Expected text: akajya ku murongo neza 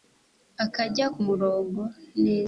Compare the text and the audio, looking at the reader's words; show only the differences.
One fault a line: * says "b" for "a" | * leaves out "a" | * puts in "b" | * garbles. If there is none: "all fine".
all fine